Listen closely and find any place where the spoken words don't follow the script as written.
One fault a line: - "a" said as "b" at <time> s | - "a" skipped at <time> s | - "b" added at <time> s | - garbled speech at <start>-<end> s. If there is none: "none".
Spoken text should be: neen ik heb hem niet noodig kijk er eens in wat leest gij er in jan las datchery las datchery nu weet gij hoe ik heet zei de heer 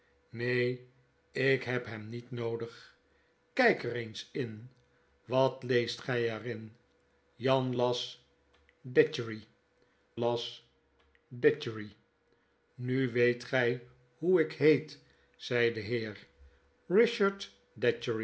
none